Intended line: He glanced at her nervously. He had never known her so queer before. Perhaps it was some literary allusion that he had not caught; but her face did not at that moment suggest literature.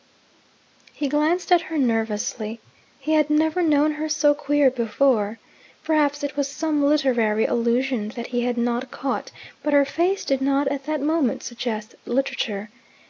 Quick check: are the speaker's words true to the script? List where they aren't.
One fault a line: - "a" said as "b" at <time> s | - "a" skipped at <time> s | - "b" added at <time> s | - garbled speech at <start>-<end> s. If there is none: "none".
none